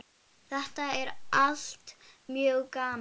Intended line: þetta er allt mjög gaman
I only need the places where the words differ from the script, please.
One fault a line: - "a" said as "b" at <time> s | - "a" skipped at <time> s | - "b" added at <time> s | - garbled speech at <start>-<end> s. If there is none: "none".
none